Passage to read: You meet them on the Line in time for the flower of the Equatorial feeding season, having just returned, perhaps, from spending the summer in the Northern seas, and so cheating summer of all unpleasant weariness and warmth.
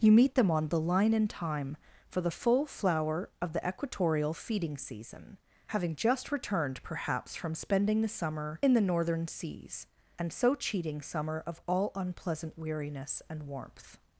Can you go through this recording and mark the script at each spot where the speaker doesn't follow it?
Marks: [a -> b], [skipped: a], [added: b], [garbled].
You meet them on the Line in time for the [added: full] flower of the Equatorial feeding season, having just returned, perhaps, from spending the summer in the Northern seas, and so cheating summer of all unpleasant weariness and warmth.